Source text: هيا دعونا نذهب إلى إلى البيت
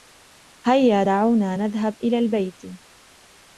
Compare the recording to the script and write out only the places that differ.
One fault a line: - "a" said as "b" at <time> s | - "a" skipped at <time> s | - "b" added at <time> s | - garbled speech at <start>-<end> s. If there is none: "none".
- "إلى" skipped at 2.2 s